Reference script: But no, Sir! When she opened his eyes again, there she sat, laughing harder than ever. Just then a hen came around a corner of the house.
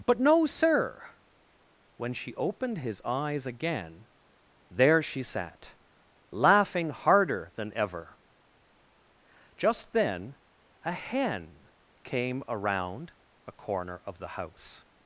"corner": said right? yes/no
yes